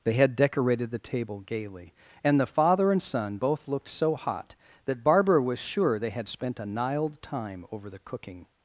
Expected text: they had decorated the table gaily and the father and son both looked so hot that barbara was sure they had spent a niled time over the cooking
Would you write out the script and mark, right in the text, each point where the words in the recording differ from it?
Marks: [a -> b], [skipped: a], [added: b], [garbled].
they had decorated the table gaily and the father and son both looked so hot that barbara was sure they had spent a niled time over the cooking